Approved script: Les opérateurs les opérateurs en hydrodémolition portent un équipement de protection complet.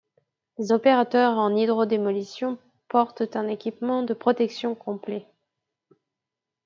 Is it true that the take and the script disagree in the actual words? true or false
true